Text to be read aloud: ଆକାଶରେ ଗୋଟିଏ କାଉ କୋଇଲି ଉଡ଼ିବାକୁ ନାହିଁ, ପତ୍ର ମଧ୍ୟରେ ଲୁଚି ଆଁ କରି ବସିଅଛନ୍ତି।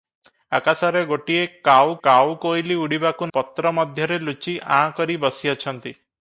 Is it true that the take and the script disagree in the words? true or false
true